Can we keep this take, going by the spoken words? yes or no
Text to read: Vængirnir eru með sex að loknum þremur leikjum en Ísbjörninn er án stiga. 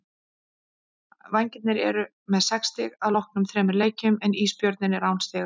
no